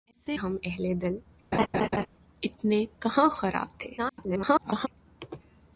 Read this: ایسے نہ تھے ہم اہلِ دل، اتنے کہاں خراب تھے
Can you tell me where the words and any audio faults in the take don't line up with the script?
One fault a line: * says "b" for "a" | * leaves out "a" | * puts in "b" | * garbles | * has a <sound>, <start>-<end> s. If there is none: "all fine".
* leaves out "نہ تھے"
* has a laugh, 1.5-2.1 s
* garbles